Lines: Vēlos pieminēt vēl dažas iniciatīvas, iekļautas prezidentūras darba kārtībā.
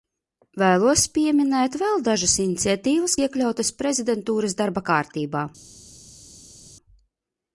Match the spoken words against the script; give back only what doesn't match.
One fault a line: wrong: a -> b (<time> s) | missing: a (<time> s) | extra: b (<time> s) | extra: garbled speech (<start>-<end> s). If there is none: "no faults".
no faults